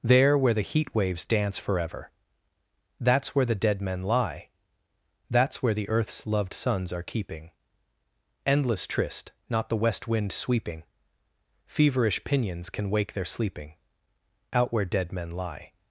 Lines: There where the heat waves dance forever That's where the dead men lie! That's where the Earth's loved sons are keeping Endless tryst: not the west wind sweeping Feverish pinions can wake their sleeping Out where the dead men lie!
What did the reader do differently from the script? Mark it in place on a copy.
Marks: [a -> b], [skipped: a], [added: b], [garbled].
There where the heat waves dance forever That's where the dead men lie! That's where the Earth's loved sons are keeping Endless tryst: not the west wind sweeping Feverish pinions can wake their sleeping Out where [skipped: the] dead men lie!